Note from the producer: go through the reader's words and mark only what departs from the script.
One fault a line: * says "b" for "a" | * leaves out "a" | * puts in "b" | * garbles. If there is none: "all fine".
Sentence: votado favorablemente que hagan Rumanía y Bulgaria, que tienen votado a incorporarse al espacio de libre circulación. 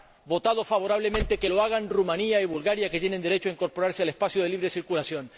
* puts in "lo"
* says "derecho" for "votado"